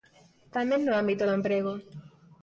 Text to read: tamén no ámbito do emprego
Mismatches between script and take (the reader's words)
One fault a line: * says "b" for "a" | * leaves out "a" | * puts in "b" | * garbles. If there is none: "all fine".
all fine